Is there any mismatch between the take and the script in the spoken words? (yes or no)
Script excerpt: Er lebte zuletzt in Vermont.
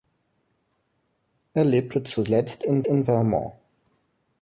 yes